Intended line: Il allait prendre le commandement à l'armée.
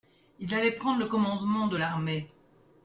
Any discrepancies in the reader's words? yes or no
yes